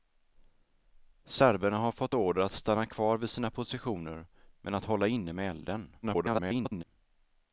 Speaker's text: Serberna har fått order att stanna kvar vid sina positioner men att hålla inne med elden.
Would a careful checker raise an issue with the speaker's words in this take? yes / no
yes